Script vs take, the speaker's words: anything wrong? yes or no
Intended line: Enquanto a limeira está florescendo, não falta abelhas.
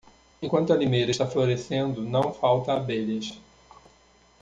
no